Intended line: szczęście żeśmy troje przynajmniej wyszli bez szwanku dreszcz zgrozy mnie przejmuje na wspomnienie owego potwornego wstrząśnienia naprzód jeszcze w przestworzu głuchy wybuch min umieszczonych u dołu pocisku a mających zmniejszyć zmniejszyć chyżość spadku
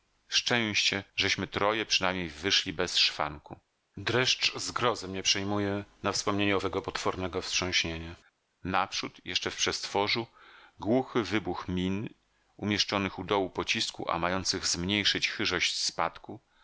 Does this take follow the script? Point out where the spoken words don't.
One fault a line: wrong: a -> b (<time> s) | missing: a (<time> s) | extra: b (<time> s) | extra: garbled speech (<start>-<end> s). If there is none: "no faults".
missing: zmniejszyć (15.3 s)